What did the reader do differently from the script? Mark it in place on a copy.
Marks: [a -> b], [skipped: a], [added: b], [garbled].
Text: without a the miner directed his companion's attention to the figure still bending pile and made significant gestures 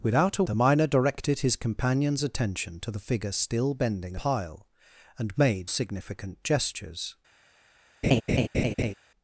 without a the miner directed his companion's attention to the figure still bending pile and made significant gestures